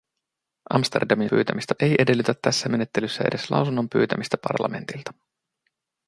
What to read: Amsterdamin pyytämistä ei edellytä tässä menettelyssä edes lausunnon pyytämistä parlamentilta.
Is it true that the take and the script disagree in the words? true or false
false